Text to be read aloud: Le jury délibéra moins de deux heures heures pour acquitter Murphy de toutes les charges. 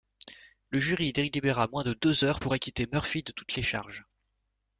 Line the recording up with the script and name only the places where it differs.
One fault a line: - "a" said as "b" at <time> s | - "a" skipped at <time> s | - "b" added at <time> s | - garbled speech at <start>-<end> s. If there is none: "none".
- "heures" skipped at 2.4 s